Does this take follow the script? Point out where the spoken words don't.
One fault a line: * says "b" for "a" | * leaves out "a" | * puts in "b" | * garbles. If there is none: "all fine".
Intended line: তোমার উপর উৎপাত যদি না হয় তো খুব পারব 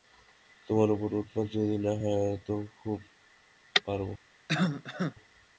all fine